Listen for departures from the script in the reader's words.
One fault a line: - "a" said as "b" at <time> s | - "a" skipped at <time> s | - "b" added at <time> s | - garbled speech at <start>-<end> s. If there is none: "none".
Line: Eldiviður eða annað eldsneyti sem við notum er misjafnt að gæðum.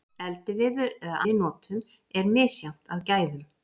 - "annað eldsneyti sem" skipped at 1.2 s